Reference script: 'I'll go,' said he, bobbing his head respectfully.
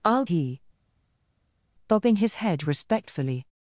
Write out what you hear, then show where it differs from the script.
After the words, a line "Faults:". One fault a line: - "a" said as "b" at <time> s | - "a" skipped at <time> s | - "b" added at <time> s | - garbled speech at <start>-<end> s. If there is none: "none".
'I'll he, bobbing his head respectfully.
Faults:
- "go said" skipped at 0.2 s